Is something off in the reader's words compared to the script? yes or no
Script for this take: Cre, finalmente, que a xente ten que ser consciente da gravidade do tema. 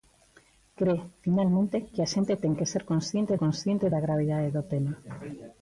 yes